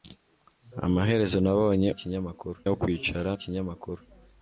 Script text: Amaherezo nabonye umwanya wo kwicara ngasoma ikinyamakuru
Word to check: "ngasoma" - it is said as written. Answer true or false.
false